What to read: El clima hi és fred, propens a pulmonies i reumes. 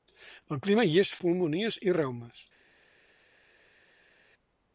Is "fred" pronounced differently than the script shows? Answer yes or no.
yes